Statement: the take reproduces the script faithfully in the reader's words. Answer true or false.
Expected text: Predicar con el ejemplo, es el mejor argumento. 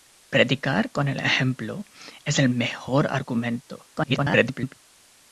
false